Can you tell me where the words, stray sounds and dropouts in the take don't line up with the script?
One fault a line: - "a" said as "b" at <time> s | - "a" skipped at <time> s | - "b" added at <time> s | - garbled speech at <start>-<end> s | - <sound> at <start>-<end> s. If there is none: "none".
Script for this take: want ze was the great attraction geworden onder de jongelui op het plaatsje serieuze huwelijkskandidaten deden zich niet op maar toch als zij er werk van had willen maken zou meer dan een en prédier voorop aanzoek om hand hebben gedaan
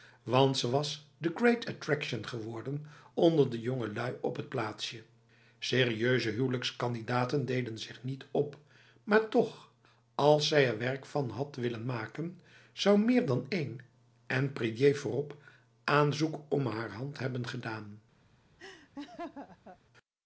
- "haar" added at 16.7 s
- laugh at 18.6-19.8 s